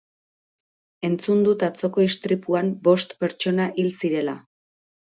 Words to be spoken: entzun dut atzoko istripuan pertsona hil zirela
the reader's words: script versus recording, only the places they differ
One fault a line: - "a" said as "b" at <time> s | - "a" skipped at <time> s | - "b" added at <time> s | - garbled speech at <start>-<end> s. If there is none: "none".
- "bost" added at 2.9 s